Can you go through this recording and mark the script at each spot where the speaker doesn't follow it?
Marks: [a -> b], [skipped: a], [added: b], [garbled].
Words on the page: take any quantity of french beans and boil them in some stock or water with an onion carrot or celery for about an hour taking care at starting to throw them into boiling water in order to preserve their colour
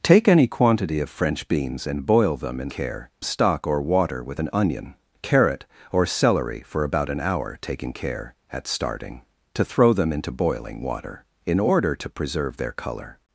take any quantity of french beans and boil them in [some -> care] stock or water with an onion carrot or celery for about an hour taking care at starting to throw them into boiling water in order to preserve their colour